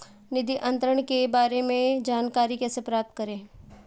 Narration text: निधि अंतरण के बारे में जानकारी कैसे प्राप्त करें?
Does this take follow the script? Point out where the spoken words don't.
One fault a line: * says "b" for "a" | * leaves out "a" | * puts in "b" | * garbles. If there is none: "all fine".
all fine